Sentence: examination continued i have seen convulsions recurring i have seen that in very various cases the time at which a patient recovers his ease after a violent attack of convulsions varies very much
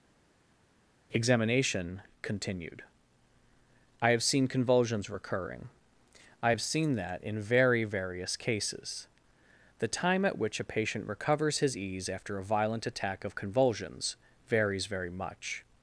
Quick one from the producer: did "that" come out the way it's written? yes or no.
yes